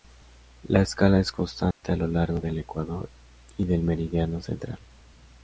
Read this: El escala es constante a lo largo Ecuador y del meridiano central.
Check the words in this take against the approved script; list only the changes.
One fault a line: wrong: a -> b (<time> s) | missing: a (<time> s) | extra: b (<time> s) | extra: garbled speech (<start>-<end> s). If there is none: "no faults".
wrong: El -> La (0.7 s)
extra: del (2.4 s)